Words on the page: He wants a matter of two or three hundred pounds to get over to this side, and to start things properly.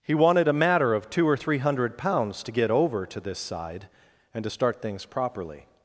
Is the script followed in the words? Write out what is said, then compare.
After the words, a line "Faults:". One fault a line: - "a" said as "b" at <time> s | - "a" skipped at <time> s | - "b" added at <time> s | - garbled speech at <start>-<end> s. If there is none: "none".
He wanted a matter of two or three hundred pounds to get over to this side, and to start things properly.
Faults:
- "wants" said as "wanted" at 0.1 s